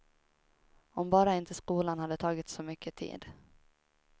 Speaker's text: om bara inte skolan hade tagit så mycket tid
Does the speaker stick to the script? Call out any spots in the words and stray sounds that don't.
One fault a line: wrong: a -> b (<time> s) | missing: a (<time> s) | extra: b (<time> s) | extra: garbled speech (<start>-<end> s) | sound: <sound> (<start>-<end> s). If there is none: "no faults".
no faults